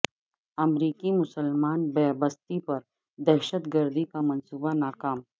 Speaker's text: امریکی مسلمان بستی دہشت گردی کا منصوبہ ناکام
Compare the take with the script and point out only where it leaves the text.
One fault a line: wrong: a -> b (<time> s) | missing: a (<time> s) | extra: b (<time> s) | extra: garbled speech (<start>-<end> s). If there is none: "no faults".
extra: پر (2.6 s)